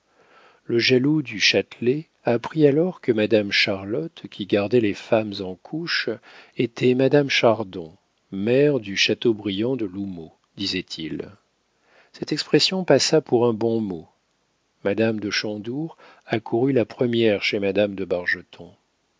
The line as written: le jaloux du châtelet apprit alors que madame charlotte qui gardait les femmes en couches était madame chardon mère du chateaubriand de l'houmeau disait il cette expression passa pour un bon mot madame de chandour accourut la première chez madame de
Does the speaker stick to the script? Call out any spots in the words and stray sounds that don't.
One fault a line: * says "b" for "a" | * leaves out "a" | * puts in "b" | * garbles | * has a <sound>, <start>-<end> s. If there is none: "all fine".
all fine